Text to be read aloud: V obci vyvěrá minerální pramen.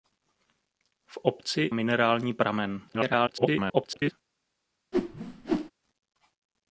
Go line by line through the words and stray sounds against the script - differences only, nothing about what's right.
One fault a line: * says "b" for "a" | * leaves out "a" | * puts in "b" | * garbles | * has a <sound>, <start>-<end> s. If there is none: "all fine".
* leaves out "vyvěrá"
* garbles
* has a whoosh, 4.9-5.7 s